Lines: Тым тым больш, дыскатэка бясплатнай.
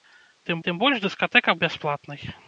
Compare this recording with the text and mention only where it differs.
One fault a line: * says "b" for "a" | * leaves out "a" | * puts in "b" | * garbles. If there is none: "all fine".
all fine